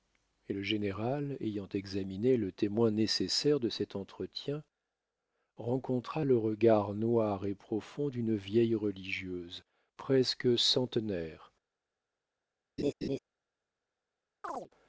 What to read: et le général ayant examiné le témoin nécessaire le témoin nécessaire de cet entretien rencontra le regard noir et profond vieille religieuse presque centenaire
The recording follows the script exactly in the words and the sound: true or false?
false